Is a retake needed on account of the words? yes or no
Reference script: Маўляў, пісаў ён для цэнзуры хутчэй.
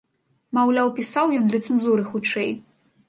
no